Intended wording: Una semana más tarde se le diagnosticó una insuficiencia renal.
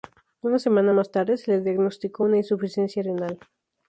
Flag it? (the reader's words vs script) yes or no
no